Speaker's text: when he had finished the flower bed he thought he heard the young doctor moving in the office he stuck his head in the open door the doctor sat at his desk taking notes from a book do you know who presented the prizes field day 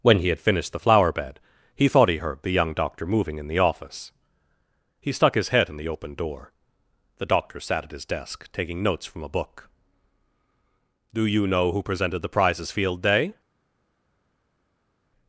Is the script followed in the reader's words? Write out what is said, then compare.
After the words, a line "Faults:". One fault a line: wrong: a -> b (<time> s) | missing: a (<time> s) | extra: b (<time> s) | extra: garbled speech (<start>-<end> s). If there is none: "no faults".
when he had finished the flower bed he thought he heard the young doctor moving in the office he stuck his head in the open door the doctor sat at his desk taking notes from a book do you know who presented the prizes field day
Faults:
no faults